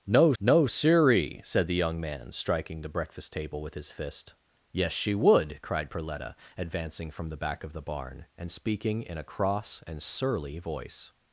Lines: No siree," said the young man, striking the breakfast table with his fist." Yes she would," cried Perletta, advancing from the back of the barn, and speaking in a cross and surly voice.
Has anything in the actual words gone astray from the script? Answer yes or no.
yes